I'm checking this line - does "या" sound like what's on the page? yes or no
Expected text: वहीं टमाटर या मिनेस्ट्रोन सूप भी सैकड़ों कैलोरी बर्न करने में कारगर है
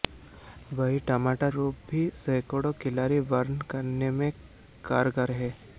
no